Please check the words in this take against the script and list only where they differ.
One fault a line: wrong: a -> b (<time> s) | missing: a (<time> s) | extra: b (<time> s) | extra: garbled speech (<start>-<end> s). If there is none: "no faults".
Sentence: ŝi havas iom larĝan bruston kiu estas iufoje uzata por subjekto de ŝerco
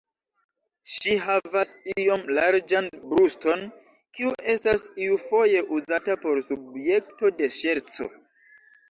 no faults